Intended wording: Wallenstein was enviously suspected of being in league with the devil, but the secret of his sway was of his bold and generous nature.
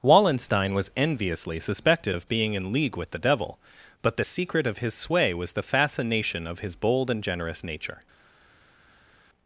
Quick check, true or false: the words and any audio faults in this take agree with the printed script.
false